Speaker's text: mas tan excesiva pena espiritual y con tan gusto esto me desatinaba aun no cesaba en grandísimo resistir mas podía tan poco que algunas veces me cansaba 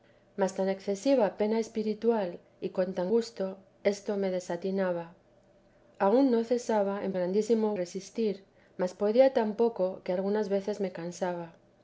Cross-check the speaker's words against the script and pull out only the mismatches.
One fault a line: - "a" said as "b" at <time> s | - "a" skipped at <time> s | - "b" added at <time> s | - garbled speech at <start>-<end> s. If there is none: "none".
none